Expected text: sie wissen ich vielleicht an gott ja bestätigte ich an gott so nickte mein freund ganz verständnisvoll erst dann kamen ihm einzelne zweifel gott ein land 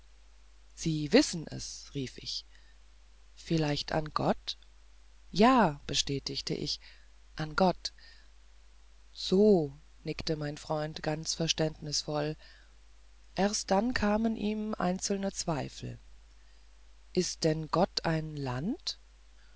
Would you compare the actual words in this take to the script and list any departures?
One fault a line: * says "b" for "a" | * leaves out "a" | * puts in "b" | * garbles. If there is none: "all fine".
* puts in "es rief"
* puts in "ist denn"